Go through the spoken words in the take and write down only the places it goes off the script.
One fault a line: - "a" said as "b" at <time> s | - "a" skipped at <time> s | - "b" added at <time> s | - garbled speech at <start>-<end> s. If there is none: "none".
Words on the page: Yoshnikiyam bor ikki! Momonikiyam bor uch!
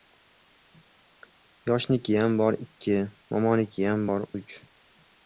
none